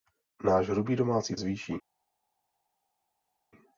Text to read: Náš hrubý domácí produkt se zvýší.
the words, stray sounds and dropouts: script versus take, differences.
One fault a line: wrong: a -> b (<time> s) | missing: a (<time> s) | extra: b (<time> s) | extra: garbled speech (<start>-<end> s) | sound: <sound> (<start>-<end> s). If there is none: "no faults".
missing: produkt se (1.4 s)